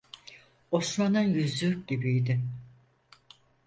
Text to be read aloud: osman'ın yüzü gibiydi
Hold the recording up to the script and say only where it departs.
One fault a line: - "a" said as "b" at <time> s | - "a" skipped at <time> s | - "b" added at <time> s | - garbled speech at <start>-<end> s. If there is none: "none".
none